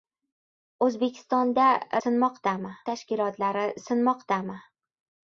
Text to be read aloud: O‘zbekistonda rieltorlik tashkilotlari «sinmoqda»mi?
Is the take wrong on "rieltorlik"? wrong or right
wrong